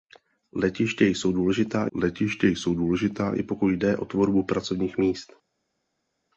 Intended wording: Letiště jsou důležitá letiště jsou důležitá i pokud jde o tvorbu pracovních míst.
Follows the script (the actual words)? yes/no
yes